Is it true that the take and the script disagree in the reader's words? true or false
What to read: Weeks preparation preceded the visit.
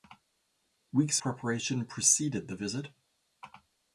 false